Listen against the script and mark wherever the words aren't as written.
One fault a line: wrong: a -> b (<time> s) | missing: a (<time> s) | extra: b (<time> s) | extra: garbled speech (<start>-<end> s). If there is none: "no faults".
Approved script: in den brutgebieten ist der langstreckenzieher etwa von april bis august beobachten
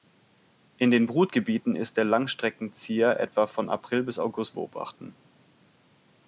no faults